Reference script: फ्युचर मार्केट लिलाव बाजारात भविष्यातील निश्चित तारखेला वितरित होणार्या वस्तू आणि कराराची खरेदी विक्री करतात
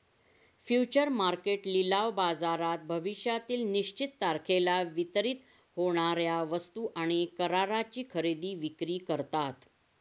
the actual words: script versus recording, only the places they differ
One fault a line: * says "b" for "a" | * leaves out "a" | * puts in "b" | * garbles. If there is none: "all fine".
all fine